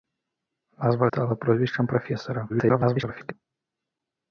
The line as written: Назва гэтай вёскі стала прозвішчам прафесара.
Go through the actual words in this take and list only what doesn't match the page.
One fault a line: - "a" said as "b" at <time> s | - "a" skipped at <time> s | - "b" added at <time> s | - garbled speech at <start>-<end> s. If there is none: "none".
- "гэтай вёскі" skipped at 1.1 s
- garbled speech at 2.5-3.3 s